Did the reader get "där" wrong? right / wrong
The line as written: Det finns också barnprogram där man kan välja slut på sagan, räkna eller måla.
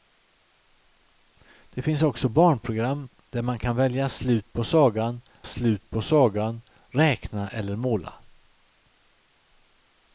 right